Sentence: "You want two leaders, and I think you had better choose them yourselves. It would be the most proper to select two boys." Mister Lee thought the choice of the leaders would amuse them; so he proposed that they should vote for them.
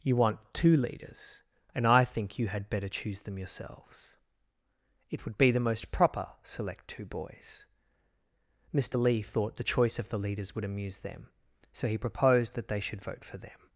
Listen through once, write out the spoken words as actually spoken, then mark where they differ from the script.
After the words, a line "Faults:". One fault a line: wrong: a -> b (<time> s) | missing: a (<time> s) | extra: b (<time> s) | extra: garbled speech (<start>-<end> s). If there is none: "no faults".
"You want two leaders, and I think you had better choose them yourselves. It would be the most proper select two boys." Mister Lee thought the choice of the leaders would amuse them; so he proposed that they should vote for them.
Faults:
missing: to (6.3 s)